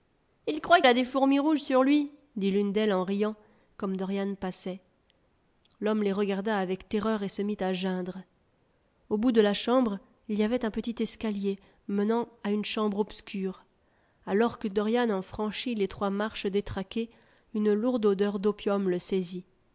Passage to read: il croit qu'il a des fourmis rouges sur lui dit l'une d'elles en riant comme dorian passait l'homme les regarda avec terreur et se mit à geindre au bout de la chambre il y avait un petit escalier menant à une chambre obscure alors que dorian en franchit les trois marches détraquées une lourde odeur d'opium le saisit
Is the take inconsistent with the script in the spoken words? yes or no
yes